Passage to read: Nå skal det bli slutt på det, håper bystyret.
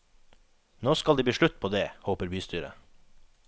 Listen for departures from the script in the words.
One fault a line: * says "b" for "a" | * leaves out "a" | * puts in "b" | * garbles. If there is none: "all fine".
all fine